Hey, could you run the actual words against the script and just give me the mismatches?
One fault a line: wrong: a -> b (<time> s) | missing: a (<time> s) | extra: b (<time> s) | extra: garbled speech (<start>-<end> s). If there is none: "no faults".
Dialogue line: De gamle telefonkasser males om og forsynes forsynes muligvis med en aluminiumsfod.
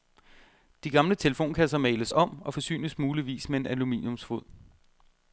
missing: forsynes (3.0 s)